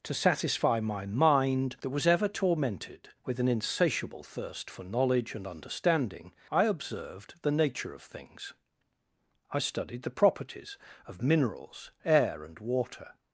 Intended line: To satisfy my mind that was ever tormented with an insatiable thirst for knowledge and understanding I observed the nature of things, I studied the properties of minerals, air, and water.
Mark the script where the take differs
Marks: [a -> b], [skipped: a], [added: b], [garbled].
To satisfy my mind that was ever tormented with an insatiable thirst for knowledge and understanding I observed the nature of things, I studied the properties of minerals, air, and water.